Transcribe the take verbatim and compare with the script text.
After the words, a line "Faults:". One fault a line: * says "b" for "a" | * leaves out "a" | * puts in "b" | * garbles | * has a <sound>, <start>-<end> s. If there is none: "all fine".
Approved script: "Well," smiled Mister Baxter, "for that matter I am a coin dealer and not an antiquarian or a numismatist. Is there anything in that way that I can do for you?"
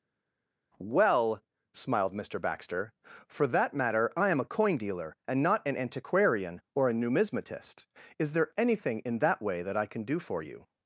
"Well," smiled Mister Baxter, "for that matter I am a coin dealer and not an antiquarian or a numismatist. Is there anything in that way that I can do for you?"
Faults:
all fine